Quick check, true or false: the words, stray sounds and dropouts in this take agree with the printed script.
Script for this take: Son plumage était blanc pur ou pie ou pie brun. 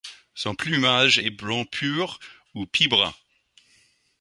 false